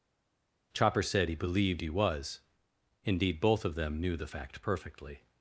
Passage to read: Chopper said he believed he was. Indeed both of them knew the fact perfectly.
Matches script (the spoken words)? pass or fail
pass